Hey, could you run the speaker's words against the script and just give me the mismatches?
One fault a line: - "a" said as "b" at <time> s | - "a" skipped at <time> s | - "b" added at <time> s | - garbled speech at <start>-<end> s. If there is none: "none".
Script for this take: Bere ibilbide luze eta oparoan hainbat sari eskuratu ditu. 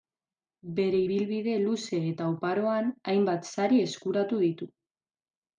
none